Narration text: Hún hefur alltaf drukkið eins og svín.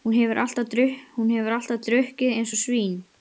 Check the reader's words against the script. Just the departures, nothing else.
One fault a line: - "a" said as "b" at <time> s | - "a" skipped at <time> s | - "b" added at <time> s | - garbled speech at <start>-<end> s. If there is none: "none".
none